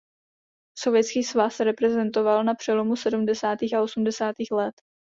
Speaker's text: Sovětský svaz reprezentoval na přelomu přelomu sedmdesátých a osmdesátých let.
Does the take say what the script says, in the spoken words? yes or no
no